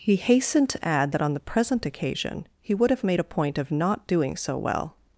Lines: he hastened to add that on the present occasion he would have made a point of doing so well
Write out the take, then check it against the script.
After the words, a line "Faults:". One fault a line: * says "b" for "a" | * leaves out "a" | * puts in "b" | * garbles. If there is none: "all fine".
he hastened to add that on the present occasion he would have made a point of not doing so well
Faults:
* puts in "not"